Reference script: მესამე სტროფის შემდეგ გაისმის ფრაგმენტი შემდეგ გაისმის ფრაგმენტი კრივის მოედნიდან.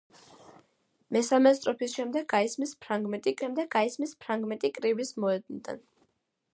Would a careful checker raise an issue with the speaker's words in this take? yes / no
no